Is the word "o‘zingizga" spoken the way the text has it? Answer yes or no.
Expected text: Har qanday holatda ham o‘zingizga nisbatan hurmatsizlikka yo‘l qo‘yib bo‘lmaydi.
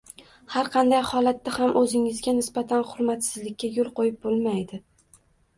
yes